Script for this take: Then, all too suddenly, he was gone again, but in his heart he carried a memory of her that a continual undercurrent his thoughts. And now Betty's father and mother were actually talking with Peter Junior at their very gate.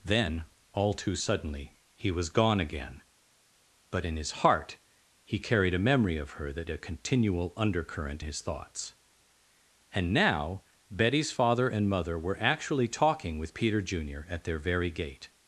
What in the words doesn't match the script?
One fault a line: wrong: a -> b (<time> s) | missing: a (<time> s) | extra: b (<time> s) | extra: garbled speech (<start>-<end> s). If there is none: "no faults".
no faults